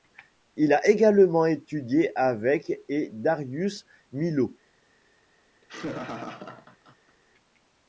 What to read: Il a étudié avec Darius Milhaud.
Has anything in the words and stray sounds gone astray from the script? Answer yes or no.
yes